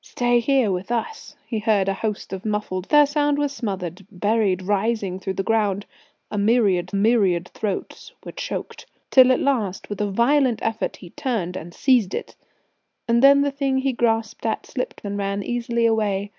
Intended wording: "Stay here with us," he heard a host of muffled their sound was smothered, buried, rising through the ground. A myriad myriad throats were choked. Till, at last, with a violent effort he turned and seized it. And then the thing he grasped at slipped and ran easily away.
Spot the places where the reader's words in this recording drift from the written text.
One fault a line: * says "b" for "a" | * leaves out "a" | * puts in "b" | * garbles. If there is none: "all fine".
all fine